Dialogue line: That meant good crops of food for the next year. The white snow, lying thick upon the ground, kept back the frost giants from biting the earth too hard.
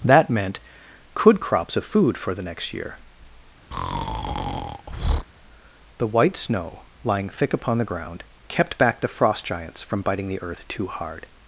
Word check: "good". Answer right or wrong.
wrong